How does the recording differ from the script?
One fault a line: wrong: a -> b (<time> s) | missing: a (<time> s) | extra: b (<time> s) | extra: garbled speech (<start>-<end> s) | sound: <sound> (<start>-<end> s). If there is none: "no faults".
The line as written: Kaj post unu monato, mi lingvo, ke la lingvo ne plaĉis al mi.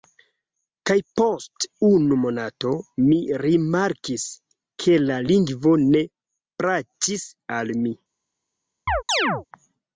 wrong: lingvo -> rimarkis (3.4 s)
sound: chirp (8.9-9.5 s)